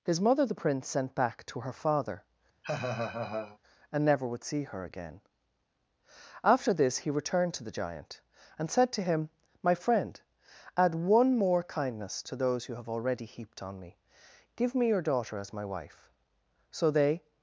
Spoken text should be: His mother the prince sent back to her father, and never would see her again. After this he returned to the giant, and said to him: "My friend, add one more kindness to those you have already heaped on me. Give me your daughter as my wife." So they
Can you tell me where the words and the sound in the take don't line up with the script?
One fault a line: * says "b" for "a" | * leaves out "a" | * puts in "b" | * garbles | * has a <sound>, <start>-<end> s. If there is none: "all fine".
* has a laugh, 2.6-3.6 s